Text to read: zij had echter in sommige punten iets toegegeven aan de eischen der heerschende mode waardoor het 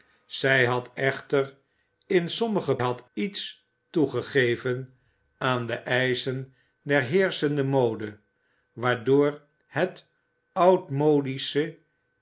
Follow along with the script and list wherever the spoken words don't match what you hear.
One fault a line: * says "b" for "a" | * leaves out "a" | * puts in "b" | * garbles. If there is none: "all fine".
* says "had" for "punten"